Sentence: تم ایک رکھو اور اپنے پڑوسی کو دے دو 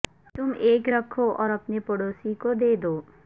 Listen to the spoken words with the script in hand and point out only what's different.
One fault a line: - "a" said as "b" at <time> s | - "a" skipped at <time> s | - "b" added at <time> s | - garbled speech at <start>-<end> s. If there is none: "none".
none